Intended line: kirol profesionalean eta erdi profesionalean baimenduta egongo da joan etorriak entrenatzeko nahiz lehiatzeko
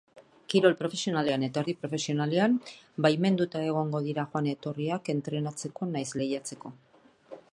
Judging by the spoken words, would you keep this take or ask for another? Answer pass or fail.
fail